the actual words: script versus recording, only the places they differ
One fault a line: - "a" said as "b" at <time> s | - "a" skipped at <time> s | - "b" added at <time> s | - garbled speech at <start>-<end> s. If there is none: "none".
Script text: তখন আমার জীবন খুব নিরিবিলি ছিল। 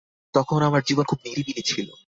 none